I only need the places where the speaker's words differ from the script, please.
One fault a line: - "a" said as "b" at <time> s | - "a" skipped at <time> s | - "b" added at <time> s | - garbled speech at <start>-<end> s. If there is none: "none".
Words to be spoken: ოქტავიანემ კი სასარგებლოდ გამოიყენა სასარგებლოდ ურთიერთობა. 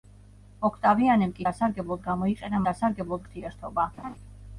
none